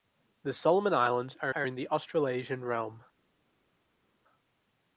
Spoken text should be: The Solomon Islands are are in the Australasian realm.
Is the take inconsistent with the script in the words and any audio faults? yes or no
no